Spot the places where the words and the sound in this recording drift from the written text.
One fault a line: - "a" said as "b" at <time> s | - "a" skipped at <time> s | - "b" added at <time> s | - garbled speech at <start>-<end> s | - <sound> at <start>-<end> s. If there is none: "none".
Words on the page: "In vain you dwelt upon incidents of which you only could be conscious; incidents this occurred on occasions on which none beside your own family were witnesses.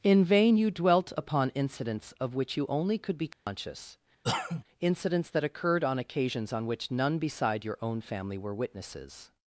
- dropout at 3.3-3.5 s
- cough at 4.2-4.6 s
- "this" said as "that" at 5.3 s